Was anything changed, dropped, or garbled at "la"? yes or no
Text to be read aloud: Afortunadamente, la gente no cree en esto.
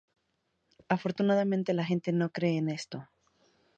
no